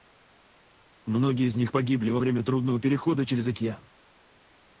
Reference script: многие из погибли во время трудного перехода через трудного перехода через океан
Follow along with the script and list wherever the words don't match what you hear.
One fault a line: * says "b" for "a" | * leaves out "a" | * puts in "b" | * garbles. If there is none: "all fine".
* puts in "них"
* leaves out "трудного перехода через"